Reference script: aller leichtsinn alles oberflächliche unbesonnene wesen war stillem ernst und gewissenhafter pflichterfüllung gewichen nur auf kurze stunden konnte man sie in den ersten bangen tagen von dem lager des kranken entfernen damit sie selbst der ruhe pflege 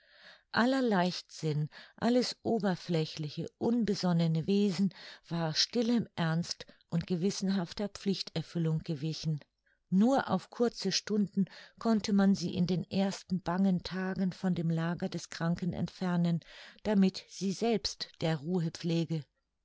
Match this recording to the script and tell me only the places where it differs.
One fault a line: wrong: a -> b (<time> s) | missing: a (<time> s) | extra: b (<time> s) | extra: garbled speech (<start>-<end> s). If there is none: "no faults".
no faults